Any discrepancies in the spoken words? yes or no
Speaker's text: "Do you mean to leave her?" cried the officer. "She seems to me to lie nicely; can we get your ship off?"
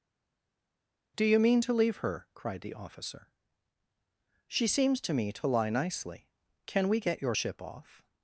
no